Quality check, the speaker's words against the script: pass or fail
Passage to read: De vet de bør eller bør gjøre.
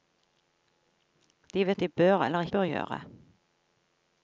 pass